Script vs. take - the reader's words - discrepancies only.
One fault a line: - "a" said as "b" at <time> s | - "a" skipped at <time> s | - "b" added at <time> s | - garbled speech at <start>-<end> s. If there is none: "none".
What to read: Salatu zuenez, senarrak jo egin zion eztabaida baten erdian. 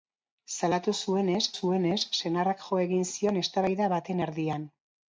- "zuenez" added at 1.6 s